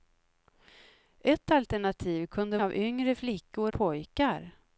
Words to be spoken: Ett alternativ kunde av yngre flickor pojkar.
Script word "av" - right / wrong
right